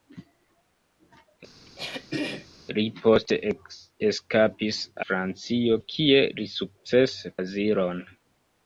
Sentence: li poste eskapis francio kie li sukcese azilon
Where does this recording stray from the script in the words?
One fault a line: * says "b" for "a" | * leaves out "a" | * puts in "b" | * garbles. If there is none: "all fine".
all fine